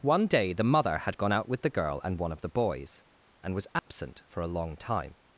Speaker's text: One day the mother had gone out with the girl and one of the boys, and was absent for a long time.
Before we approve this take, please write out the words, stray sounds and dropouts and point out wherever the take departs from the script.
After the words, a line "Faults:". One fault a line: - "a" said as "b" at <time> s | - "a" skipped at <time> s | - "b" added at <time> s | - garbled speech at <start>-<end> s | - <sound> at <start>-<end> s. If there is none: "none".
One day the mother had gone out with the girl and one of the boys, and was absent for a long time.
Faults:
- dropout at 3.8-3.9 s